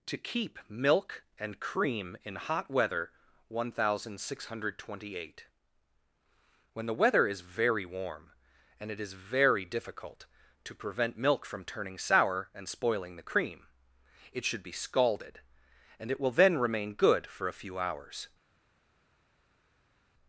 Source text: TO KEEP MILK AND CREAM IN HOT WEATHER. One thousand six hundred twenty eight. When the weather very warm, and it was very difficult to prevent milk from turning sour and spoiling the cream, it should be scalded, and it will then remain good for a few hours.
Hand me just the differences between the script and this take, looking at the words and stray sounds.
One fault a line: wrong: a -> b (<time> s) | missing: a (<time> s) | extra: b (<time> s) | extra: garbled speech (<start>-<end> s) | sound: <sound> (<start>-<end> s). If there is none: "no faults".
extra: is (7.3 s)
wrong: was -> is (9.0 s)